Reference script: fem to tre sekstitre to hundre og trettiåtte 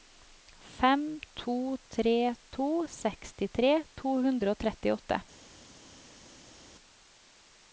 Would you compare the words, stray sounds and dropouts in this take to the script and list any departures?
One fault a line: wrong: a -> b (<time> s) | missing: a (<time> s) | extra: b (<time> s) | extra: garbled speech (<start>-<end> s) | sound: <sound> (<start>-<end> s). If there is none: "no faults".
extra: to (2.6 s)